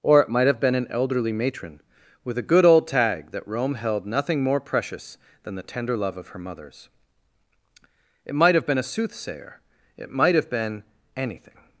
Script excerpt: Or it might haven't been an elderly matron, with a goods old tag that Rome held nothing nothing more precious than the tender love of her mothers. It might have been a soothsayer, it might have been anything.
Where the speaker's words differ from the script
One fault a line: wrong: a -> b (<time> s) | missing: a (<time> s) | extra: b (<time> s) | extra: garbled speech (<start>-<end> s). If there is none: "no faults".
wrong: haven't -> have (0.5 s)
wrong: goods -> good (2.4 s)
missing: nothing (4.4 s)